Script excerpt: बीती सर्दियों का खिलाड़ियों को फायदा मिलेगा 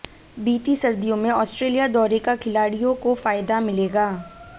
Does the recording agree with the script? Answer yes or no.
no